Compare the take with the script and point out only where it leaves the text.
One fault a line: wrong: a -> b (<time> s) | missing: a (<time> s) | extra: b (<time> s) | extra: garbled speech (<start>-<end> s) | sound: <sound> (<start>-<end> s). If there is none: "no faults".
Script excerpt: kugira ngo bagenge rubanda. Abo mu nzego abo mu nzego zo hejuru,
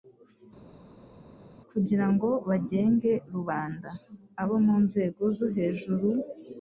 missing: abo mu nzego (5.2 s)